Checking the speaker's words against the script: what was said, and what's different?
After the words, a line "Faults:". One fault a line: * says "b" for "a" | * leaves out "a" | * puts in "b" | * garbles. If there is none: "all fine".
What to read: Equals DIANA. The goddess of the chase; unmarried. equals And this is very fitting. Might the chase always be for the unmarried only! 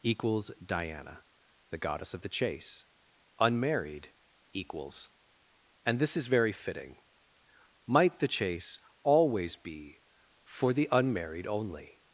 Equals DIANA. The goddess of the chase; unmarried. equals And this is very fitting. Might the chase always be for the unmarried only!
Faults:
all fine